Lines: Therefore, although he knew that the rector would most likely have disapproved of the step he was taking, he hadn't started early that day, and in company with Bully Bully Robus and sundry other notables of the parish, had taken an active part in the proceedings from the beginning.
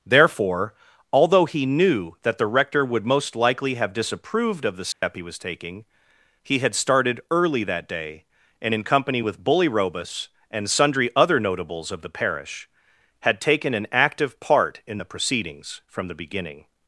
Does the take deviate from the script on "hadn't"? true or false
true